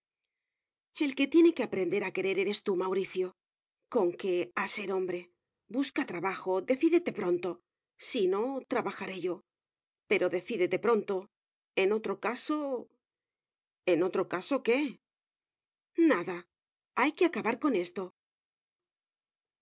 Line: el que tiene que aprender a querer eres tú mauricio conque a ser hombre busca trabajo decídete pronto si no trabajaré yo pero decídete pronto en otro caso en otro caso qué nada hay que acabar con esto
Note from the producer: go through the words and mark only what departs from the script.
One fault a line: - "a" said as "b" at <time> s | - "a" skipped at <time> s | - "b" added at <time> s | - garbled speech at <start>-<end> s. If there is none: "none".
none